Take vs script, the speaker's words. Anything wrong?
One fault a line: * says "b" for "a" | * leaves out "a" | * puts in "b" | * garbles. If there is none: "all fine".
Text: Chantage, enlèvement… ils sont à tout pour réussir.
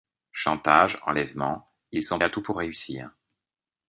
all fine